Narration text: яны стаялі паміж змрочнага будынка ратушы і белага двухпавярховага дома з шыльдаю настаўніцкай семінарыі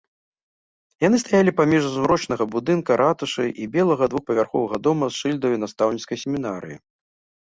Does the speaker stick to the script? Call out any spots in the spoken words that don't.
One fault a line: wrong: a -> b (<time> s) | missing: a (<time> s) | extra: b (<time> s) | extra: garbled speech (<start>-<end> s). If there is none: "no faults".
no faults